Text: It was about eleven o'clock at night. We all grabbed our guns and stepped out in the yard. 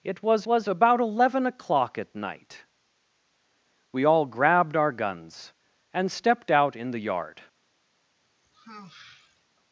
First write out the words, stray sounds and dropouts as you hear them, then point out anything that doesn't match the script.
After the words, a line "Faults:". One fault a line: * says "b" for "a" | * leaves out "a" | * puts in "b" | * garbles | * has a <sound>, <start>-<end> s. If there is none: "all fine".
It was was about eleven o'clock at night. We all grabbed our guns and stepped out in the yard.
Faults:
* puts in "was"
* has a sigh, 8.2-9.5 s